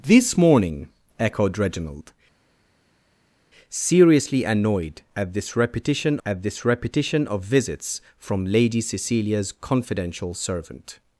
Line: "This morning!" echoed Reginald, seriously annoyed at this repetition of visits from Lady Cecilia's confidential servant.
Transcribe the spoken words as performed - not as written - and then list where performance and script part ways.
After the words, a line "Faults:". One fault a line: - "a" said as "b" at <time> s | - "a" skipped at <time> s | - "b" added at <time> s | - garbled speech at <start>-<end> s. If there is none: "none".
"This morning!" echoed Reginald, seriously annoyed at this repetition at this repetition of visits from Lady Cecilia's confidential servant.
Faults:
- "at this repetition" added at 6.2 s